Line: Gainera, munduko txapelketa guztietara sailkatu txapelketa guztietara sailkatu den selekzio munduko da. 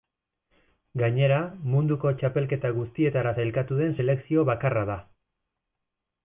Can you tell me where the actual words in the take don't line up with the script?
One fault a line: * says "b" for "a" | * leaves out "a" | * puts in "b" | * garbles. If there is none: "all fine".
* leaves out "txapelketa guztietara sailkatu"
* says "bakarra" for "munduko"